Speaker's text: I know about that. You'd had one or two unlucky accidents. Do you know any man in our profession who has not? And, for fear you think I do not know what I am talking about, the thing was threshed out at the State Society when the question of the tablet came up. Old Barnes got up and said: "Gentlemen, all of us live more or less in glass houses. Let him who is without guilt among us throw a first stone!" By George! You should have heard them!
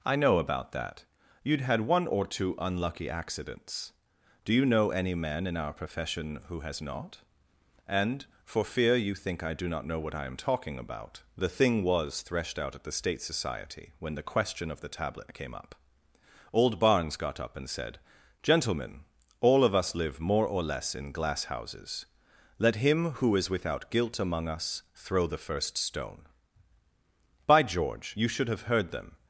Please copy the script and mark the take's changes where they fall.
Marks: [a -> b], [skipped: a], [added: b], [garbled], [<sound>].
I know about that. You'd had one or two unlucky accidents. Do you know any man in our profession who has not? And, for fear you think I do not know what I am talking about, the thing was threshed out at the State Society when the question of the tablet came up. Old Barnes got up and said: "Gentlemen, all of us live more or less in glass houses. Let him who is without guilt among us throw [a -> the] first stone!" By George! You should have heard them!